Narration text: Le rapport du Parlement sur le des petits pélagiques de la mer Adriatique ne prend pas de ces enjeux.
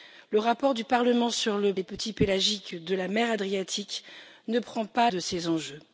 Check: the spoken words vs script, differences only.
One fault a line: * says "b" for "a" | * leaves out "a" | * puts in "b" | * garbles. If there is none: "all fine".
all fine